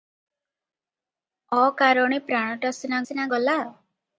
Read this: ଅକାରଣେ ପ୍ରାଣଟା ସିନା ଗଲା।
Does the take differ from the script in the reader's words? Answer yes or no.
yes